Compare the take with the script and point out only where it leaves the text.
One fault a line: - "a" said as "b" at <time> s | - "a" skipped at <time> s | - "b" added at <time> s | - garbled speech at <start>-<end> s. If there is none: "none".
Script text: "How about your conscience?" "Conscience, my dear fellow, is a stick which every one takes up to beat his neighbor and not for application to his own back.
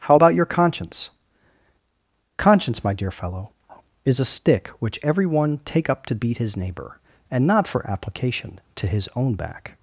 - "takes" said as "take" at 5.6 s